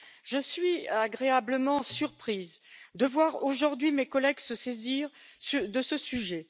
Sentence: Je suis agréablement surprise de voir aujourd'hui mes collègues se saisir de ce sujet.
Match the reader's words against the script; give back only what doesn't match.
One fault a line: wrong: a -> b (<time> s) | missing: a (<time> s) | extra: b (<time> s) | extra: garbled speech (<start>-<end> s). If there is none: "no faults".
no faults